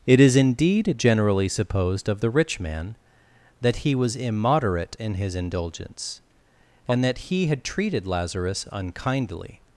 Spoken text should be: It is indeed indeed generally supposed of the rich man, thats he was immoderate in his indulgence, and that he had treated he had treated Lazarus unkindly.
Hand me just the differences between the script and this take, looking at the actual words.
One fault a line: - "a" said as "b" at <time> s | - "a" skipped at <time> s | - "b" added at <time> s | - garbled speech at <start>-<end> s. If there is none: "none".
- "indeed" skipped at 0.9 s
- "thats" said as "that" at 3.6 s
- "he had treated" skipped at 8.1 s